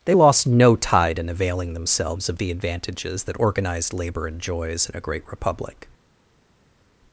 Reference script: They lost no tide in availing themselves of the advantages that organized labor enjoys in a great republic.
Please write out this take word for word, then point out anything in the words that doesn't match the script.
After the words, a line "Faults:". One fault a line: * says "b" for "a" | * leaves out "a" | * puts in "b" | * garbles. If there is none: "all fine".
They lost no tide in availing themselves of the advantages that organized labor enjoys in a great republic.
Faults:
all fine